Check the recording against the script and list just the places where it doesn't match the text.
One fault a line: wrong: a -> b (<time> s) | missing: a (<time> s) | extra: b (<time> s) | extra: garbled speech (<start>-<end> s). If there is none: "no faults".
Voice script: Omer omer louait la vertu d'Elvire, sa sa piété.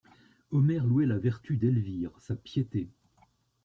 missing: omer (0.9 s)
missing: sa (2.4 s)